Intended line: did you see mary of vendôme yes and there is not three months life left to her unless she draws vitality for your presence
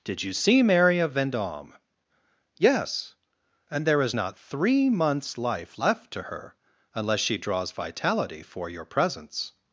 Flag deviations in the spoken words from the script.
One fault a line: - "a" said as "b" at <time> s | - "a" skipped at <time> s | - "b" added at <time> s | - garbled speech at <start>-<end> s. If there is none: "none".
none